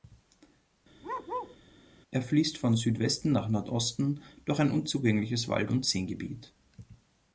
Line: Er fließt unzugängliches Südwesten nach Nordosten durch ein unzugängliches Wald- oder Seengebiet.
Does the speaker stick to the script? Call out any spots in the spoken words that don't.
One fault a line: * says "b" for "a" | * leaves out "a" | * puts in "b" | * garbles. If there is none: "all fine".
* says "von" for "unzugängliches"
* says "und" for "oder"